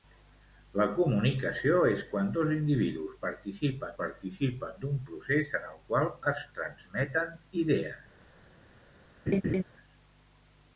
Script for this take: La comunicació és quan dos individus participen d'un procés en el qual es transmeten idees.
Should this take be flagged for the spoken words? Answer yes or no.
yes